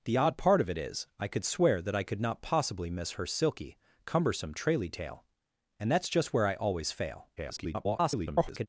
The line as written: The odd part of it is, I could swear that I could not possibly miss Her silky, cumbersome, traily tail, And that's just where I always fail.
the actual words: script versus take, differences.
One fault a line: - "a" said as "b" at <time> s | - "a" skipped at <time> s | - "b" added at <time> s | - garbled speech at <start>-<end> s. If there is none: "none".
- garbled speech at 7.4-8.7 s